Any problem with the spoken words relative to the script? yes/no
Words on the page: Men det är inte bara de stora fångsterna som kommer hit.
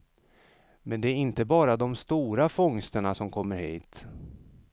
no